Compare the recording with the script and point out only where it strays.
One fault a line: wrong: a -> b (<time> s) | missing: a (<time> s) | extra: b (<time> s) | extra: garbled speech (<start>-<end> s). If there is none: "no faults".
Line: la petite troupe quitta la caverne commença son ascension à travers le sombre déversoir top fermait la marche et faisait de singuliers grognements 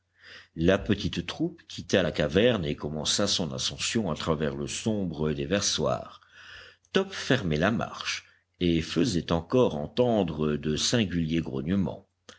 extra: et (2.6 s)
extra: encore entendre (9.3 s)